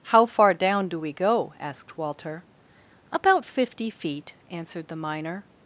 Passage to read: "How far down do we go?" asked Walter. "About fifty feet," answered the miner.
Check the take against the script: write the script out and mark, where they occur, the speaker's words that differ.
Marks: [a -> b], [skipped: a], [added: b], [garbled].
"How far down do we go?" asked Walter. "About fifty feet," answered the miner.